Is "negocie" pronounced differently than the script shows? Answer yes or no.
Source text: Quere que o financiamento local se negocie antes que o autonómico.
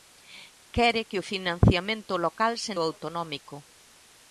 yes